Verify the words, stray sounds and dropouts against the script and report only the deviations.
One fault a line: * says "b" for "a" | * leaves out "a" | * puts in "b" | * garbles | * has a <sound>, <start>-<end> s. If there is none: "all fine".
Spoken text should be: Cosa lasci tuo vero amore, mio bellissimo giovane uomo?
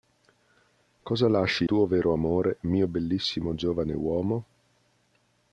all fine